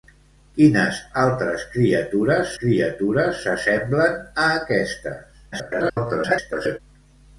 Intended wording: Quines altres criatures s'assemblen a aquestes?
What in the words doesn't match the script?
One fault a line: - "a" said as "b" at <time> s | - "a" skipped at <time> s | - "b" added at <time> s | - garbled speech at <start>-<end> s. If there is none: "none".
- "criatures" added at 2.6 s
- garbled speech at 5.5-6.8 s